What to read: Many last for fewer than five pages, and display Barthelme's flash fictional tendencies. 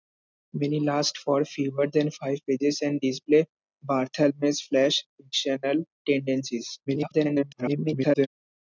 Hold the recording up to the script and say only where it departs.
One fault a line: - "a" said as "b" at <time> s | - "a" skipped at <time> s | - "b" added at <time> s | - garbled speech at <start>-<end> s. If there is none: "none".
- garbled speech at 6.9-8.3 s